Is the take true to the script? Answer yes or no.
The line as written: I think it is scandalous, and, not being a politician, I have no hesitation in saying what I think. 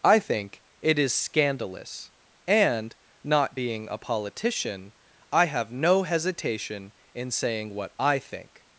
yes